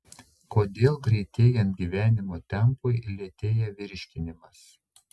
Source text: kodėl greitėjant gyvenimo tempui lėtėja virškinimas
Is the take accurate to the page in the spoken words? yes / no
yes